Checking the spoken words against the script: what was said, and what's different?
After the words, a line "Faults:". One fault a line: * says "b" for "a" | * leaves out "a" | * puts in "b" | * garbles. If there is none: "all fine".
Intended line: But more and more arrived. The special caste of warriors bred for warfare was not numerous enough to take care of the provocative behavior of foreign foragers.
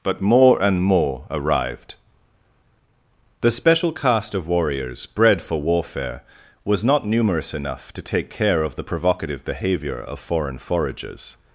But more and more arrived. The special caste of warriors bred for warfare was not numerous enough to take care of the provocative behavior of foreign foragers.
Faults:
all fine